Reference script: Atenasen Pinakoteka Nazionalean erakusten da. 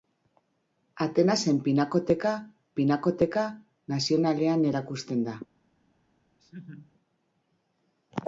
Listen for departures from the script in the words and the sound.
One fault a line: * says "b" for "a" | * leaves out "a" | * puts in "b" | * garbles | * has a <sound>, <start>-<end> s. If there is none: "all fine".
* puts in "Pinakoteka"
* has a laugh, 6.4-6.9 s